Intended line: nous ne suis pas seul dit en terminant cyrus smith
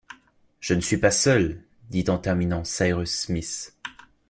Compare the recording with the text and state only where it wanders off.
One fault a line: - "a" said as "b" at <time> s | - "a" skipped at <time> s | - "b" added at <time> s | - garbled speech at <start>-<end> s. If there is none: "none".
- "nous" said as "je" at 0.6 s